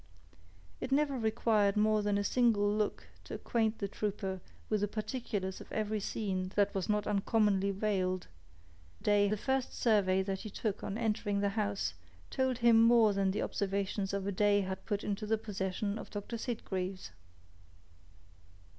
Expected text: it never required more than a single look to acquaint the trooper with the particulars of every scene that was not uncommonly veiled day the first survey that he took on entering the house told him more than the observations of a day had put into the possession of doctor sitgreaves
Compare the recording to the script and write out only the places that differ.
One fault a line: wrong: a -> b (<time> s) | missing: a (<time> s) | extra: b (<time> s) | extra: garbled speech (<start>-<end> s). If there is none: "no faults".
no faults